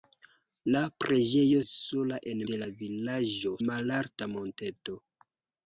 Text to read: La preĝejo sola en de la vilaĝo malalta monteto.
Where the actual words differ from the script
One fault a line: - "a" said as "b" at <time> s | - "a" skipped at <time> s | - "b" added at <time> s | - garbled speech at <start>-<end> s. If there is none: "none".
none